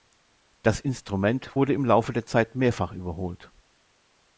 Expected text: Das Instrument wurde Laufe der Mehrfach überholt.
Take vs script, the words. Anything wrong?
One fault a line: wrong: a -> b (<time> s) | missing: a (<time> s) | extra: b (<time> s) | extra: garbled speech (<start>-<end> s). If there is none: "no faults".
extra: im (1.7 s)
extra: Zeit (2.2 s)